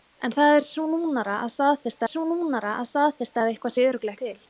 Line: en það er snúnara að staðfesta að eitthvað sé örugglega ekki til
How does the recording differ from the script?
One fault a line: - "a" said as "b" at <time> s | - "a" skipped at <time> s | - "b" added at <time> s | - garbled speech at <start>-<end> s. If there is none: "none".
- "snúnara" added at 2.1 s
- "staðfesta að" added at 2.9 s
- "ekki" skipped at 4.2 s